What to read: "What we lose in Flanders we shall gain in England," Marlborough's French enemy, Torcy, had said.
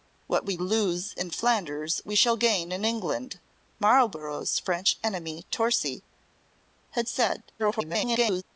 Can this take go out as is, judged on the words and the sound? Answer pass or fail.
fail